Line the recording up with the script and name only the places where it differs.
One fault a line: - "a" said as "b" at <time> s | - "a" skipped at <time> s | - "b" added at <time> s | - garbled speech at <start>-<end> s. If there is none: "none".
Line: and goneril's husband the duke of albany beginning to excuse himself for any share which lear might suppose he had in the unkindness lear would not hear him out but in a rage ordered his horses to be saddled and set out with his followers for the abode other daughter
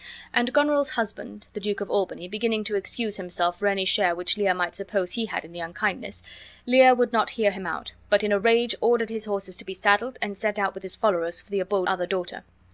none